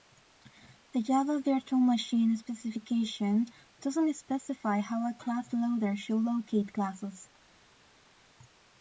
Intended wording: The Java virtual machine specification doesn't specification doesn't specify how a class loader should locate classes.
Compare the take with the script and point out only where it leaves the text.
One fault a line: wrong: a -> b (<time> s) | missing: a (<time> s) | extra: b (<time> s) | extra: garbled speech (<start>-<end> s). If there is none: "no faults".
missing: specification doesn't (4.1 s)